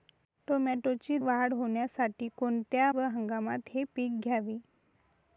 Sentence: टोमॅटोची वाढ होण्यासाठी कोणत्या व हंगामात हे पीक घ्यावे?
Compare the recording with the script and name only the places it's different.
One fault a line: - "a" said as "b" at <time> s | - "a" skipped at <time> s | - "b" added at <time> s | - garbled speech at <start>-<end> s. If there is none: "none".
none